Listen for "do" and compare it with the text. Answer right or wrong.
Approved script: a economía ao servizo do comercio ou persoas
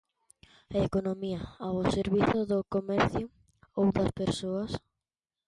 right